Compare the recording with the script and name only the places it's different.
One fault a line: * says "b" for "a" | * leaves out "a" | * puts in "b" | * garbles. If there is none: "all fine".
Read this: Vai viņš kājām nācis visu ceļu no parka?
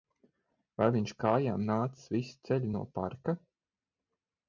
all fine